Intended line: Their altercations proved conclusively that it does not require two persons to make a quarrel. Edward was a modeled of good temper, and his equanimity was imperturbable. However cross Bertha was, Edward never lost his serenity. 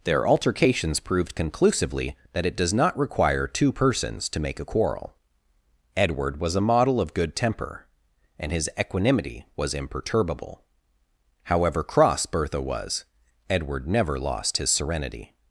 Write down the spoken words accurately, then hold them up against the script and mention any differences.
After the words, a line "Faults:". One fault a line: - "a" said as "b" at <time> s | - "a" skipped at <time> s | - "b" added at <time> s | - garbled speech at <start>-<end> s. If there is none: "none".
Their altercations proved conclusively that it does not require two persons to make a quarrel. Edward was a model of good temper, and his equanimity was imperturbable. However cross Bertha was, Edward never lost his serenity.
Faults:
- "modeled" said as "model" at 6.6 s